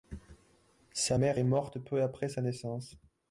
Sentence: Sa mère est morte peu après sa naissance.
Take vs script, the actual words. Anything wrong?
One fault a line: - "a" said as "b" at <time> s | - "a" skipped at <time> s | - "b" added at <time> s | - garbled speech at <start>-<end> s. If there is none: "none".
none